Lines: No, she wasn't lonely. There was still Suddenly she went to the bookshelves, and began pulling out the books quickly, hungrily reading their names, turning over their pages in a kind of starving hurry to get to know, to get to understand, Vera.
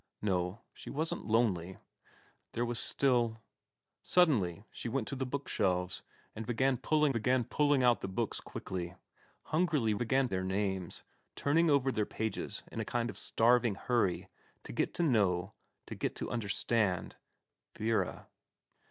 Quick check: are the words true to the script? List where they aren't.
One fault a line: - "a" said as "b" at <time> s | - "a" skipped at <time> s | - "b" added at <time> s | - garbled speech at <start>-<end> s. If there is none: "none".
- "began pulling" added at 7.1 s
- "reading" said as "began" at 10.0 s